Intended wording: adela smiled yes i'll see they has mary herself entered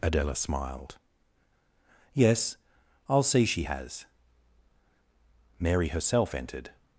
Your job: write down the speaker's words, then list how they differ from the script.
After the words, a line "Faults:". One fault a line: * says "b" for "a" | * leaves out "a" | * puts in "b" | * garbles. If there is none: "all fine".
adela smiled yes i'll see she has mary herself entered
Faults:
* says "she" for "they"